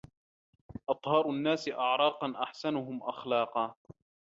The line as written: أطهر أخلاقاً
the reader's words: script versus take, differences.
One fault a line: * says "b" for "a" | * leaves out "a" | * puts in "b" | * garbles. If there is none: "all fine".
* puts in "الناس أعراقاً أحسنهم"